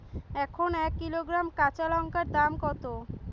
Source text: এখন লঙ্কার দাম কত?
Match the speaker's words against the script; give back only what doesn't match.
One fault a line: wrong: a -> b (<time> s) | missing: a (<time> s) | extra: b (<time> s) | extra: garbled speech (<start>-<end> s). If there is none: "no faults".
extra: এক কিলোগ্রাম কাঁচা (0.8 s)